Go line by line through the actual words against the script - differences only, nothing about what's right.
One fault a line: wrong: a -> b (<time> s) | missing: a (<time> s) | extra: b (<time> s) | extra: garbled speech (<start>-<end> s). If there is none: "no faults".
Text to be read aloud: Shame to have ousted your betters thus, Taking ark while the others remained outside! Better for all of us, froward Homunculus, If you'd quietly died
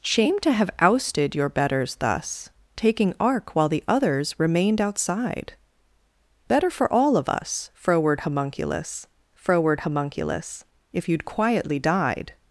extra: froward Homunculus (9.4 s)